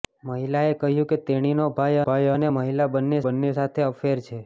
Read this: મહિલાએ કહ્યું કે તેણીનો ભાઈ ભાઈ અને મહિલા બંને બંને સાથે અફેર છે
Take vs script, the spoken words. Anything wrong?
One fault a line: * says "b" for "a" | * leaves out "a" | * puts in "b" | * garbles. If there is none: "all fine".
all fine